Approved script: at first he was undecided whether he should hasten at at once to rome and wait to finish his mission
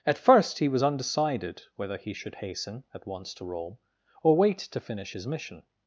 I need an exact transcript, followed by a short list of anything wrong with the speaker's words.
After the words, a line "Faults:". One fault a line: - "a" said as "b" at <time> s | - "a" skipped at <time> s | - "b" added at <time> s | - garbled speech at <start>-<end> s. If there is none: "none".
at first he was undecided whether he should hasten at once to rome or wait to finish his mission
Faults:
- "at" skipped at 3.1 s
- "and" said as "or" at 4.2 s